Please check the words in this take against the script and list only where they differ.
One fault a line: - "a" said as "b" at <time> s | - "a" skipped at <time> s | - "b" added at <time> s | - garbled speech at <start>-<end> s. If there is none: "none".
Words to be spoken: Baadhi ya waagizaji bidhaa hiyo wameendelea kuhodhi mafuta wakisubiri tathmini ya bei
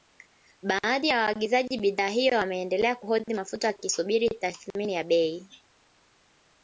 none